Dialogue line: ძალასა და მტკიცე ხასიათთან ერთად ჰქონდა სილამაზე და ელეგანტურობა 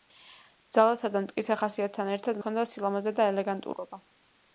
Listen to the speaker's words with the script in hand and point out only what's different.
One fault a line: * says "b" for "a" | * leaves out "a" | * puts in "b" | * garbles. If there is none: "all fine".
all fine